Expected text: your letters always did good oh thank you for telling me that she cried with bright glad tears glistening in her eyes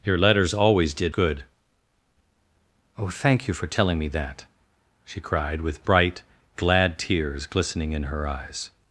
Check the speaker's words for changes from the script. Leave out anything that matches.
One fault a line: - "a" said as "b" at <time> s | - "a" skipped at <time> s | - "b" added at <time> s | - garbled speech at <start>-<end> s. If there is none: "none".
none